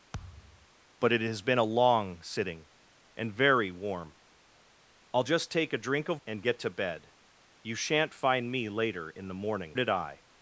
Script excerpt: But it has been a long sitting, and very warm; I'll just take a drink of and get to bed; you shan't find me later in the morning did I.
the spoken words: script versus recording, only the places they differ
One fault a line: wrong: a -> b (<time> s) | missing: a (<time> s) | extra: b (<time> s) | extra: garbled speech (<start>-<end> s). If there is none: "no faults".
no faults